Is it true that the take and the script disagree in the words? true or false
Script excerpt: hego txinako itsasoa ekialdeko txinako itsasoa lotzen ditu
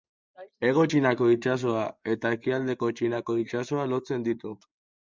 true